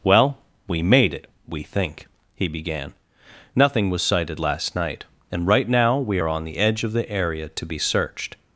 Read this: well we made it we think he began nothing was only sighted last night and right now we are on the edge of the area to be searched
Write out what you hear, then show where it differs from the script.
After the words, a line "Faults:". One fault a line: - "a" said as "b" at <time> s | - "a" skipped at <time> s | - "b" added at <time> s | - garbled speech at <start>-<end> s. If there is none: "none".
well we made it we think he began nothing was sighted last night and right now we are on the edge of the area to be searched
Faults:
- "only" skipped at 4.0 s